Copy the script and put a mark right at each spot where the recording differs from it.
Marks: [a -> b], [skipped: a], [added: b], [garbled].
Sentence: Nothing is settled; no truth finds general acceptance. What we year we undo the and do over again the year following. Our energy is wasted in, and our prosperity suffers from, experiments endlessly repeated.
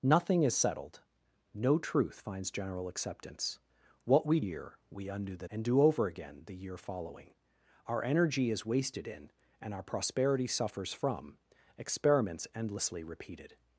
Nothing is settled; no truth finds general acceptance. What we year we undo the and do over again the year following. Our energy is wasted in, and our prosperity suffers from, experiments endlessly repeated.